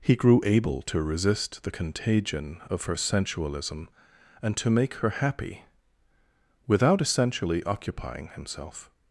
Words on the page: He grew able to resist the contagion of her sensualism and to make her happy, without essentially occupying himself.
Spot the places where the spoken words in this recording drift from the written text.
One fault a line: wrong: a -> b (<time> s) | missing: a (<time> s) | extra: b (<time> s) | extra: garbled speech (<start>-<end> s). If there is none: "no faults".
no faults